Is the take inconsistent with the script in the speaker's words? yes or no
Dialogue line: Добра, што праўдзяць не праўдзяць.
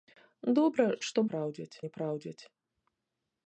no